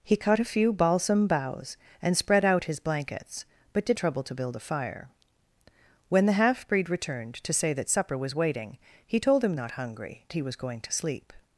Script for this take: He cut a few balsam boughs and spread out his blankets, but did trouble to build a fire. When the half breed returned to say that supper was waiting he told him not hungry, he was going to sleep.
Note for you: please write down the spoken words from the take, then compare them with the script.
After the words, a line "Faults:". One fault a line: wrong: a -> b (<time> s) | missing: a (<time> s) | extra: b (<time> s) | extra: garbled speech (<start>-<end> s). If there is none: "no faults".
He cut a few balsam boughs and spread out his blankets, but did trouble to build a fire. When the half breed returned to say that supper was waiting he told him not hungry, he was going to sleep.
Faults:
no faults